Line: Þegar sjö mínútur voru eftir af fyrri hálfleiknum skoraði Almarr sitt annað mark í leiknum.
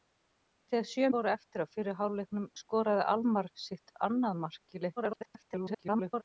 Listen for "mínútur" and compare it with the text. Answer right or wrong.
wrong